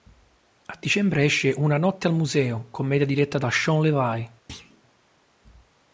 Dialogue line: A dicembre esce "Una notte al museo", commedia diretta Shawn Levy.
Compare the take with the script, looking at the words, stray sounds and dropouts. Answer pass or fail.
fail